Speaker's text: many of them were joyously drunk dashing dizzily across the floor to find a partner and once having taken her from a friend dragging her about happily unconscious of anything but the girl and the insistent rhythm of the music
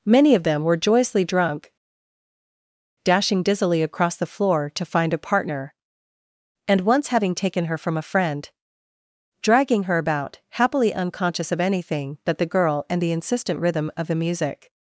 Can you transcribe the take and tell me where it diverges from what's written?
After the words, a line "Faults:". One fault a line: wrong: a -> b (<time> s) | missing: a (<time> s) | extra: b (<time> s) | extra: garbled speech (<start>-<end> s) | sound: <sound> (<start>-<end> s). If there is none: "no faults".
many of them were joyously drunk dashing dizzily across the floor to find a partner and once having taken her from a friend dragging her about happily unconscious of anything but the girl and the insistent rhythm of the music
Faults:
no faults